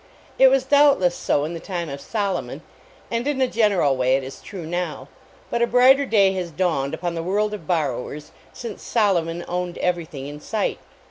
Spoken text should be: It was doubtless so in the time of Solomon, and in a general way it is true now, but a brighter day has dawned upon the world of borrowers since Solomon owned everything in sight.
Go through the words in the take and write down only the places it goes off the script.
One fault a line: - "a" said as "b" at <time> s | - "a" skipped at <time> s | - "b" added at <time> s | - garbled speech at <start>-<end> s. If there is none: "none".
none